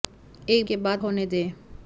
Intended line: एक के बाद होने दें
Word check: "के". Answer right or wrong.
right